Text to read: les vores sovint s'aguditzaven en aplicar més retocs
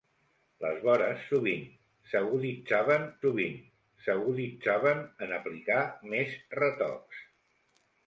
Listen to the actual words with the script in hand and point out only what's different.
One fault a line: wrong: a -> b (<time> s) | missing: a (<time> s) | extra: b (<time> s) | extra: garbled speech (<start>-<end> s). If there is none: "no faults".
extra: sovint s'aguditzaven (3.2 s)